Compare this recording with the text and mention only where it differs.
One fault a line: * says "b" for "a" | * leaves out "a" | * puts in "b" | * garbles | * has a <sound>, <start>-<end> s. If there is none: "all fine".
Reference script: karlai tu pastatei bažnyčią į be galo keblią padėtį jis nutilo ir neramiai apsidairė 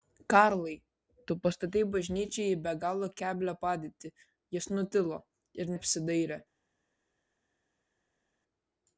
* leaves out "neramiai"